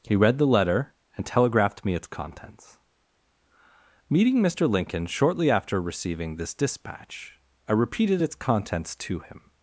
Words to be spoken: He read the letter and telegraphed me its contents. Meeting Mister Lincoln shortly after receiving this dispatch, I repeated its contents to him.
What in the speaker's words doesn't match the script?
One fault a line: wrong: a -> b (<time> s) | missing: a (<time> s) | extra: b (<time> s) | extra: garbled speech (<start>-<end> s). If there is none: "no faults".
no faults